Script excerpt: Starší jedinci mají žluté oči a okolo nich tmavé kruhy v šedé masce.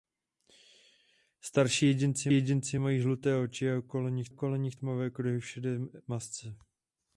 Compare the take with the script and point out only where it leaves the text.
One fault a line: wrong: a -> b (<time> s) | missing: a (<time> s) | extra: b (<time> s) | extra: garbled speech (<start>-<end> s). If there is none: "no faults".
extra: jedinci (2.3 s)
extra: okolo nich (4.3 s)